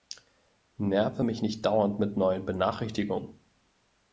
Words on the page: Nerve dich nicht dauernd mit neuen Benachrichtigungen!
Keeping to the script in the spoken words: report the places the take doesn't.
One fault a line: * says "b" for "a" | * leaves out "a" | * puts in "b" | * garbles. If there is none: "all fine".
* says "mich" for "dich"